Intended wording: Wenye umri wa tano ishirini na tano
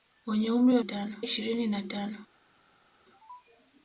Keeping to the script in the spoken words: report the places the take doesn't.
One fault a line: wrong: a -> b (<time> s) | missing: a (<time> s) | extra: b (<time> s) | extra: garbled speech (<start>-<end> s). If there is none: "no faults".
no faults